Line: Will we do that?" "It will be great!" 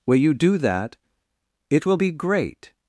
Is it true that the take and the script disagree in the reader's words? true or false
true